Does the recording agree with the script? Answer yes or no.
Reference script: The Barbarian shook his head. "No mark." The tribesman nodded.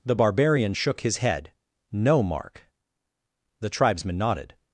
yes